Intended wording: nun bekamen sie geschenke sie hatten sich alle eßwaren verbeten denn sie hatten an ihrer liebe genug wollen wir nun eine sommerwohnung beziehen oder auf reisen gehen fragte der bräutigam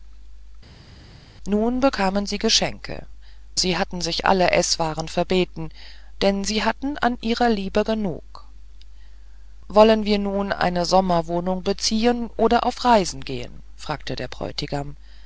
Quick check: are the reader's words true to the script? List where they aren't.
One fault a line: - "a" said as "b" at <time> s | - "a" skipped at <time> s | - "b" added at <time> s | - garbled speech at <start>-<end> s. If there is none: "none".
none